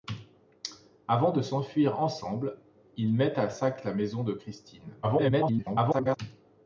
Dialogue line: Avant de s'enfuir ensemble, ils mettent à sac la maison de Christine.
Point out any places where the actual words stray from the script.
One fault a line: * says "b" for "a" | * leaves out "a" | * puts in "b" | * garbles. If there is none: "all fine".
* garbles